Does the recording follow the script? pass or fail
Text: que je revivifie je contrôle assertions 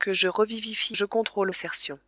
pass